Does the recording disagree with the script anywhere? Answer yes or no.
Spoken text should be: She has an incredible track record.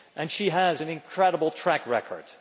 no